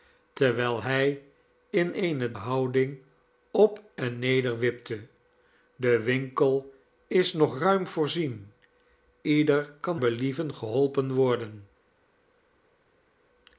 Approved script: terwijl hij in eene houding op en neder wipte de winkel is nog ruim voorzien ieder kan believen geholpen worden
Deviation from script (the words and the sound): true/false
false